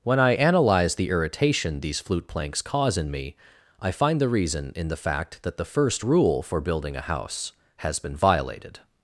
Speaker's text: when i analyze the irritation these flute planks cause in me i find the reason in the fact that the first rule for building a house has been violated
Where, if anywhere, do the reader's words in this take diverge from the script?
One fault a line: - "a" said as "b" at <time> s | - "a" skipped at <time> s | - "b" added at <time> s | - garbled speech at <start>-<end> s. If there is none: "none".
none